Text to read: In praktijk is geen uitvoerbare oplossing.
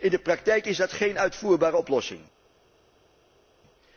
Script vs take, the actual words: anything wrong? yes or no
yes